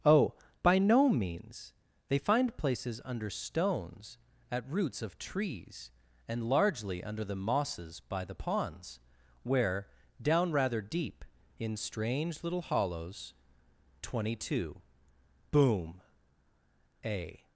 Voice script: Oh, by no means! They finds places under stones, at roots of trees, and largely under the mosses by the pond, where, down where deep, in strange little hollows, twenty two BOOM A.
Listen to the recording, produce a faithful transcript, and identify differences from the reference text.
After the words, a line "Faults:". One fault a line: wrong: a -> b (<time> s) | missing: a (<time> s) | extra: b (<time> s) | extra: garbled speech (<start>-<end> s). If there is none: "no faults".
Oh, by no means! They find places under stones, at roots of trees, and largely under the mosses by the ponds, where, down rather deep, in strange little hollows, twenty two BOOM A.
Faults:
wrong: finds -> find (2.2 s)
wrong: pond -> ponds (8.3 s)
wrong: where -> rather (10.5 s)